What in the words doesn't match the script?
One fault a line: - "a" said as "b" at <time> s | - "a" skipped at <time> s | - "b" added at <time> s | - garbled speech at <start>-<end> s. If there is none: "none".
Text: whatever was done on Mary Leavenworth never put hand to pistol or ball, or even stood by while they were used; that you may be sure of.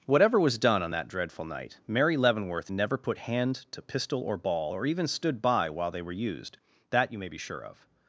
- "that dreadful night" added at 0.9 s